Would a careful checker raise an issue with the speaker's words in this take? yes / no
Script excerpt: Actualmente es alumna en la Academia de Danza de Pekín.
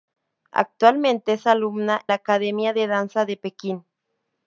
yes